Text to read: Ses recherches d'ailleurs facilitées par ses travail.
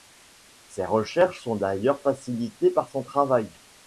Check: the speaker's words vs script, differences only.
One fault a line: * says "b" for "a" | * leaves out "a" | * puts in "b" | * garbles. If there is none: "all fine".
* puts in "sont"
* says "son" for "ses"